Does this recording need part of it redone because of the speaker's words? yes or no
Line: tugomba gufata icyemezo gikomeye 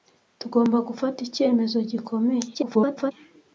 yes